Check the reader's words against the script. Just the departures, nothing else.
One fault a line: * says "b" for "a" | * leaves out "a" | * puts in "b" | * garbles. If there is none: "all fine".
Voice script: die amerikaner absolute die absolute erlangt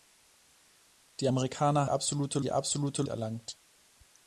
all fine